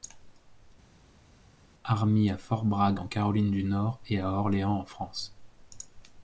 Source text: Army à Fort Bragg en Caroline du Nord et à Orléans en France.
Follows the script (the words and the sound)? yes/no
yes